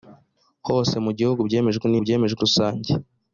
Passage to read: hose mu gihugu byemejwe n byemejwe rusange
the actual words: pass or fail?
pass